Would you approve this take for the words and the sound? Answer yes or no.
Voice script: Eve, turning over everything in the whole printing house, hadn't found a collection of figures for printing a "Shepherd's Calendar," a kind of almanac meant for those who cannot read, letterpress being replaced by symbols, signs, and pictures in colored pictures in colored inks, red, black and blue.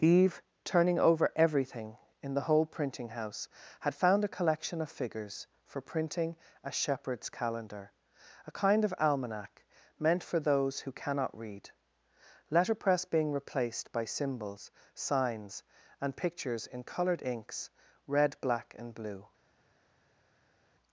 no